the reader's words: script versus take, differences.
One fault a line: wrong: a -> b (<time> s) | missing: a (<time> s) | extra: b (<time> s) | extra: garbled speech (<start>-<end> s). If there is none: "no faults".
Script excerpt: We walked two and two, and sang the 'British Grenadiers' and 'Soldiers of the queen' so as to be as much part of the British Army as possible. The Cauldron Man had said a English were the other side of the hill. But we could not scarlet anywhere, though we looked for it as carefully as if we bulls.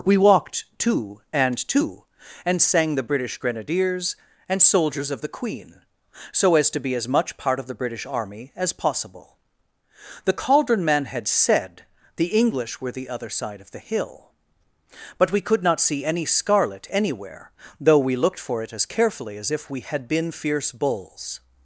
wrong: a -> the (12.2 s)
extra: see any (15.8 s)
extra: had been fierce (19.8 s)